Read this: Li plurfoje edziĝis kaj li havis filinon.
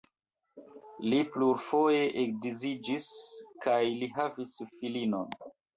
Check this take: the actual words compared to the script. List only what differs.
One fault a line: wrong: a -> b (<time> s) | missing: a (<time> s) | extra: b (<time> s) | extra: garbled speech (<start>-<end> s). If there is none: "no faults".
no faults